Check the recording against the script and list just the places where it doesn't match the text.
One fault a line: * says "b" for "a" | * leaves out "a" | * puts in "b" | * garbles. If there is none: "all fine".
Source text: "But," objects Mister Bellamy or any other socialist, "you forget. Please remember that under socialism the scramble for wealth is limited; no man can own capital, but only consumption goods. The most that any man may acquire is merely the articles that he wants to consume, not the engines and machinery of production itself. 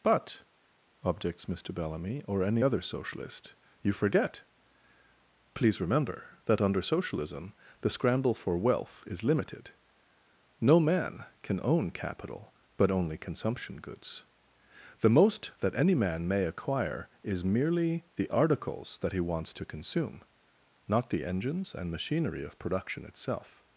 all fine